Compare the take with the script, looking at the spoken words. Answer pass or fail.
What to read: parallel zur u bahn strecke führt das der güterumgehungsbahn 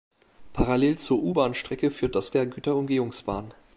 pass